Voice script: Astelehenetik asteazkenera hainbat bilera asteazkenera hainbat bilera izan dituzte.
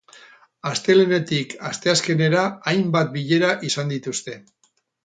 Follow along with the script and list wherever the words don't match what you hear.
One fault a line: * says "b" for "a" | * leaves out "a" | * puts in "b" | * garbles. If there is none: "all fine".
* leaves out "asteazkenera hainbat bilera"